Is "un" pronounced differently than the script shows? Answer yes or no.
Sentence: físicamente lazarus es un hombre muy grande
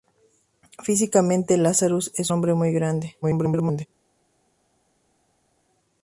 yes